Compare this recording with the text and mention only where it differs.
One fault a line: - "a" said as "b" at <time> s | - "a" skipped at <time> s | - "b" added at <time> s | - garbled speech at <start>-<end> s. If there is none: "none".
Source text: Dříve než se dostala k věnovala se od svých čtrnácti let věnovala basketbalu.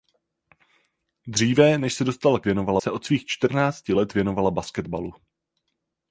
none